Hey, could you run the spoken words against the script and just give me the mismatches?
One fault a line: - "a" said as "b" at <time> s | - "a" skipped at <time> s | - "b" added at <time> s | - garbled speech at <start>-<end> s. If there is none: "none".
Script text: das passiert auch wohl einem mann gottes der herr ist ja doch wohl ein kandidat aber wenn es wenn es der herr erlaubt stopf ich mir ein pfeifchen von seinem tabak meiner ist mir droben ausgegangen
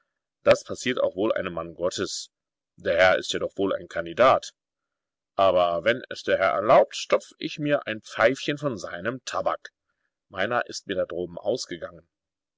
- "wenn es" skipped at 6.2 s
- "da" added at 10.9 s